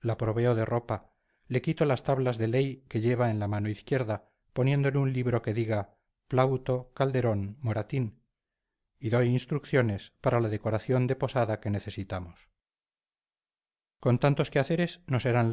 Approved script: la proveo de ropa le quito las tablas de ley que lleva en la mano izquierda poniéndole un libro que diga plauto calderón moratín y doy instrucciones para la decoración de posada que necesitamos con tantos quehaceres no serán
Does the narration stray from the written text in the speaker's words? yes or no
no